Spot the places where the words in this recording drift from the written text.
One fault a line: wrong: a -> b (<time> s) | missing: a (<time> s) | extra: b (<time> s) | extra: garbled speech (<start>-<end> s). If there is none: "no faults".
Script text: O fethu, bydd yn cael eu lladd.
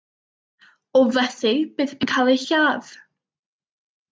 no faults